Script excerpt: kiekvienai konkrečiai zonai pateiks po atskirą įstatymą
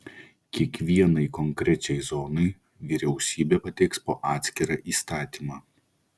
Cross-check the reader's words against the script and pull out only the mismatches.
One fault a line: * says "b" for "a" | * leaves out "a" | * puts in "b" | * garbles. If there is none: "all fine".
* puts in "vyriausybė"